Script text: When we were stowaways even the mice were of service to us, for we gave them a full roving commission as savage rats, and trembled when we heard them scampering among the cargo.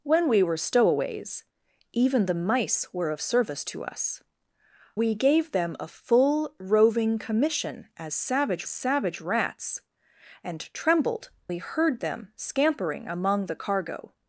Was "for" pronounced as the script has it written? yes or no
no